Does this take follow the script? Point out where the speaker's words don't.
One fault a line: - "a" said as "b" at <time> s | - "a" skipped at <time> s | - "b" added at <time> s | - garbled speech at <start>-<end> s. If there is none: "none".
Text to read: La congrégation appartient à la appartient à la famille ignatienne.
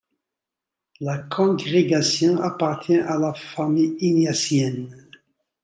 - "appartient à la" skipped at 3.3 s